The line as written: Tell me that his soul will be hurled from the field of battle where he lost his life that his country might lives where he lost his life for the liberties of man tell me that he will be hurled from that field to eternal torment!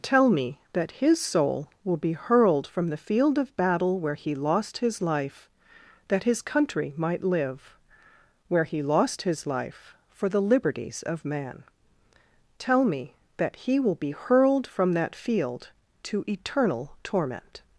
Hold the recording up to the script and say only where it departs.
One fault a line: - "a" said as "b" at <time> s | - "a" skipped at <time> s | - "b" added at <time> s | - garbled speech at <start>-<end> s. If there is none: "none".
- "lives" said as "live" at 7.2 s